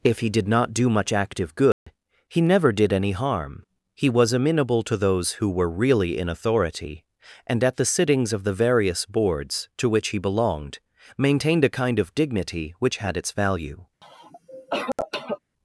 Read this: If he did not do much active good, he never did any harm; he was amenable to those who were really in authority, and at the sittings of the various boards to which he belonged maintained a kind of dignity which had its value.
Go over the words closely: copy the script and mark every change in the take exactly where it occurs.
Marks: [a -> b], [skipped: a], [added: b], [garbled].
If he did not do much active good, he never did any harm; he was amenable to those who were really in authority, and at the sittings of the various boards to which he belonged maintained a kind of dignity which had its value.